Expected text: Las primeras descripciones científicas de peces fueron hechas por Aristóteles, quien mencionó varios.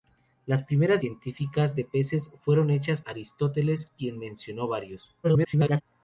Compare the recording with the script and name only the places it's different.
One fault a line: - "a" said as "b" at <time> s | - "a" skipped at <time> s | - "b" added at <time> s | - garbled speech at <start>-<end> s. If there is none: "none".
- "descripciones" skipped at 1.0 s
- "por" skipped at 3.0 s
- garbled speech at 5.2-5.8 s